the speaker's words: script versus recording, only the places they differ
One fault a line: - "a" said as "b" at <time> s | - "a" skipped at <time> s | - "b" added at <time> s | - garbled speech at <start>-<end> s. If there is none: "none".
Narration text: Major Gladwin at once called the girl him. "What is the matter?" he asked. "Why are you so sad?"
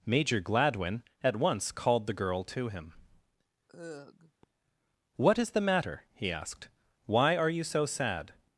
- "to" added at 2.5 s